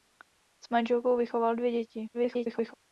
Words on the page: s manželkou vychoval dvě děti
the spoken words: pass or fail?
fail